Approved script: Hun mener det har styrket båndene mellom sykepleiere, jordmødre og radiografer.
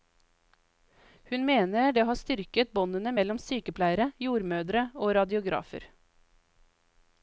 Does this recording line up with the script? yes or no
yes